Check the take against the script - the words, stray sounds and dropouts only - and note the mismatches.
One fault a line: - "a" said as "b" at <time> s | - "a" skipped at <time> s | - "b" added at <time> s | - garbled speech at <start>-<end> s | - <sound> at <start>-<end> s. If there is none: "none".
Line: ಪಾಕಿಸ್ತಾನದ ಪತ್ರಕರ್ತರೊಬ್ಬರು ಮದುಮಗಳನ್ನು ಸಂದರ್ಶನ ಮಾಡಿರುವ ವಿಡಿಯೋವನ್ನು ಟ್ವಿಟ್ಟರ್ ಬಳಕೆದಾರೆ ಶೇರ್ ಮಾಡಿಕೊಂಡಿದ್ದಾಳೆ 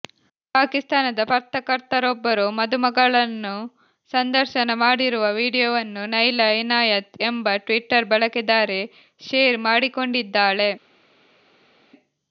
- "ನೈಲಾ ಇನಾಯತ್ ಎಂಬ" added at 6.1 s